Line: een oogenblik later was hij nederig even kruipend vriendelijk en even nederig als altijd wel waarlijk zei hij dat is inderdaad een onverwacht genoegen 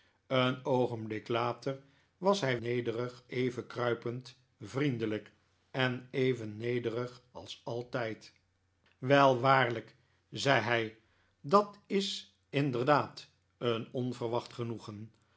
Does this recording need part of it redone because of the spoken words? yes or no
no